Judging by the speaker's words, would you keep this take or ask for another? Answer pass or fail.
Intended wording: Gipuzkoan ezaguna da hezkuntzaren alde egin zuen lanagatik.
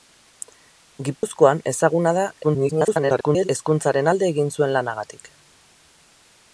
fail